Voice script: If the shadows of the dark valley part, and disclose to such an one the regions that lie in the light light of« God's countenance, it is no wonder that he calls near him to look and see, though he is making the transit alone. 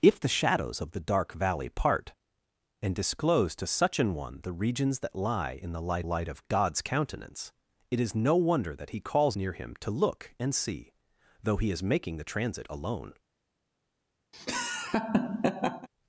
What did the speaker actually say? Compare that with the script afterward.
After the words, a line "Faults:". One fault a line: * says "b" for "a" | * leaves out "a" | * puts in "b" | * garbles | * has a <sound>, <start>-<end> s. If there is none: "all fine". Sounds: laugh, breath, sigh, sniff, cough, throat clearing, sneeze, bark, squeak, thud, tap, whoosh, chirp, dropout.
If the shadows of the dark valley part, and disclose to such an one the regions that lie in the light light of« God's countenance, it is no wonder that he calls near him to look and see, though he is making the transit alone.
Faults:
* has a laugh, 14.3-15.9 s